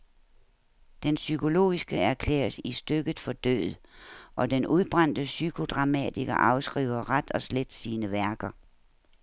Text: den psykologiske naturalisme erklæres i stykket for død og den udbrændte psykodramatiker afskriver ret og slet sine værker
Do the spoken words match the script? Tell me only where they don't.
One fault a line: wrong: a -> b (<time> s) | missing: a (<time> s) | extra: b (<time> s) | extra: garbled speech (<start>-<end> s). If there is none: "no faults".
missing: naturalisme (2.0 s)